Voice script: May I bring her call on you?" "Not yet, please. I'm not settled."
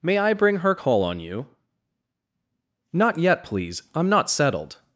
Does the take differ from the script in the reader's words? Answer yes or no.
no